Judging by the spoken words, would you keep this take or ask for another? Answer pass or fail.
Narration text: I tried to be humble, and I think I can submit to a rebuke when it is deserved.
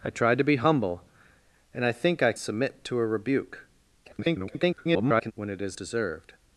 fail